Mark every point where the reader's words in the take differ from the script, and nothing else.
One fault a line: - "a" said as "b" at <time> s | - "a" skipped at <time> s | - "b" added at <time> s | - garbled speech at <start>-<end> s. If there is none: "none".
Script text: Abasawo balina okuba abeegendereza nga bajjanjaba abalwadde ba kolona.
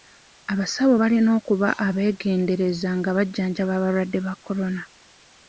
none